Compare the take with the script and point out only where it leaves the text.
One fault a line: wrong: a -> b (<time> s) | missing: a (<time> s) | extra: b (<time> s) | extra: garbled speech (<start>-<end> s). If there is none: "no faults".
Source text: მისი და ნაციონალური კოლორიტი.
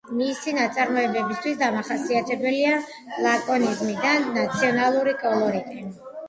extra: ნაწარმოებებისთვის დამახასიათებელია ლაკონიზმი (0.6 s)